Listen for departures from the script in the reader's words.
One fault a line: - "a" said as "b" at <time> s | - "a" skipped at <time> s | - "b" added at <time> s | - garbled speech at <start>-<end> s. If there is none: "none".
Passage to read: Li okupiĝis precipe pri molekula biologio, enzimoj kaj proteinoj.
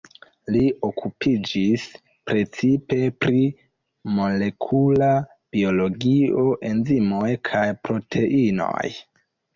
none